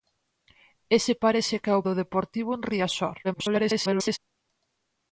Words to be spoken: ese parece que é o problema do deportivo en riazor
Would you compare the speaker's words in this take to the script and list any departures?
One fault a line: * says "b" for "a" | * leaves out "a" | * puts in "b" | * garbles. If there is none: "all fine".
* leaves out "problema"
* garbles